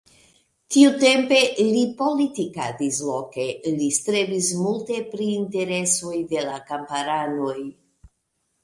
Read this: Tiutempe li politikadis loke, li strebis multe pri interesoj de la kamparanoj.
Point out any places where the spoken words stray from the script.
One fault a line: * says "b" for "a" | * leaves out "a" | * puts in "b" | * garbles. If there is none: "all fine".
all fine